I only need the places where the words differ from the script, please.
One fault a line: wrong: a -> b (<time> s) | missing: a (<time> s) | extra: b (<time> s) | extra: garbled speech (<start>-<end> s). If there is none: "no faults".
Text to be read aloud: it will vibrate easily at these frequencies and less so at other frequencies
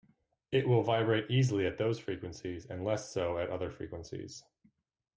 wrong: these -> those (1.8 s)